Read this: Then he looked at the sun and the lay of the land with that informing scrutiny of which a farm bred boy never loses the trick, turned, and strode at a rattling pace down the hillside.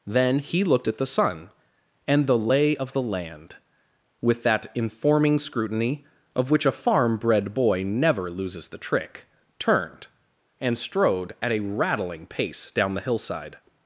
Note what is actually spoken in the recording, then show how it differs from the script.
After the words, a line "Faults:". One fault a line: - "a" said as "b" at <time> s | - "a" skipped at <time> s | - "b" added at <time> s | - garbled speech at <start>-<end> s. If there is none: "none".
Then he looked at the sun and the lay of the land with that informing scrutiny of which a farm bred boy never loses the trick, turned, and strode at a rattling pace down the hillside.
Faults:
none